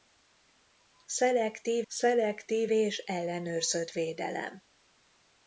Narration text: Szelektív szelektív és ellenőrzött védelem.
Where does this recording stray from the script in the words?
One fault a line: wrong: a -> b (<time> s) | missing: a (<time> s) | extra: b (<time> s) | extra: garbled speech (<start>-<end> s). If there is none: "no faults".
no faults